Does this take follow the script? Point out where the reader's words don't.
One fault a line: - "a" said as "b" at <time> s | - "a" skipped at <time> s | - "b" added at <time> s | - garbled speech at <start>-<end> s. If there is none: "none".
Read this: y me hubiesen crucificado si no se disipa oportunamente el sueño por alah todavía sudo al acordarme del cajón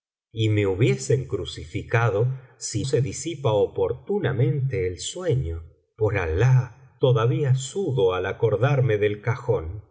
- "no" skipped at 2.9 s